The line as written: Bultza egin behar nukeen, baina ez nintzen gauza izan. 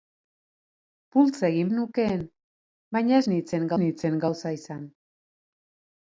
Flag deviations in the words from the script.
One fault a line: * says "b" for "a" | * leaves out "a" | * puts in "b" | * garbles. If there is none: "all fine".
* leaves out "behar"
* puts in "nintzen"